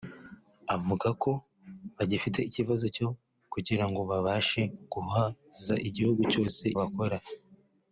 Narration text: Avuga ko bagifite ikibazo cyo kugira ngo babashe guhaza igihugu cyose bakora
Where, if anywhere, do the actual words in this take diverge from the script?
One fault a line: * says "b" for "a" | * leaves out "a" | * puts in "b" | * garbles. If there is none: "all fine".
all fine